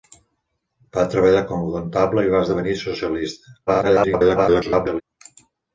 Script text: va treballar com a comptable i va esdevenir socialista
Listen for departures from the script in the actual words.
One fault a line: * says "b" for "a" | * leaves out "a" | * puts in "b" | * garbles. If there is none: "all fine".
* garbles